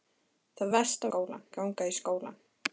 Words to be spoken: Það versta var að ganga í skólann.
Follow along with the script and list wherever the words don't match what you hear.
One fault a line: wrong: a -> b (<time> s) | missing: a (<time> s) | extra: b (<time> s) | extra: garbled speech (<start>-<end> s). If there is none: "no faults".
wrong: var -> skólann (1.1 s)